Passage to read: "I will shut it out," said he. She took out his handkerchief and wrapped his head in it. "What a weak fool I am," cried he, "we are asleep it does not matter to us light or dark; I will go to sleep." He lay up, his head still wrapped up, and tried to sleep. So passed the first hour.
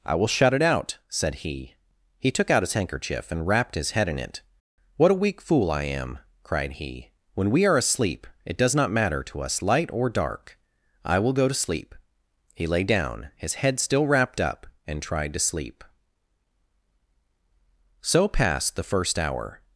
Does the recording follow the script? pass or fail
fail